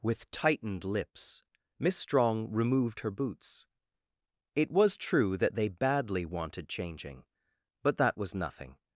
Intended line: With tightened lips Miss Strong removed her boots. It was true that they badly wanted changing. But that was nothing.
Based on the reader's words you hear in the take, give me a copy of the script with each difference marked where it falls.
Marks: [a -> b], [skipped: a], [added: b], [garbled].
With tightened lips Miss Strong removed her boots. It was true that they badly wanted changing. But that was nothing.